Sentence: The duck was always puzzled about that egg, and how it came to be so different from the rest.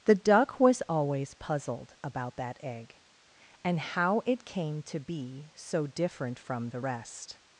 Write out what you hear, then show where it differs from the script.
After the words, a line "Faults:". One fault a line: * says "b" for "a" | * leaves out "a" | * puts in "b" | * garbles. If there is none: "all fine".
The duck was always puzzled about that egg, and how it came to be so different from the rest.
Faults:
all fine